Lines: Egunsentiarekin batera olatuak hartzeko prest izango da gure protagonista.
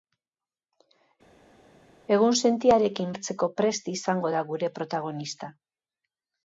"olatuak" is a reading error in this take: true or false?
true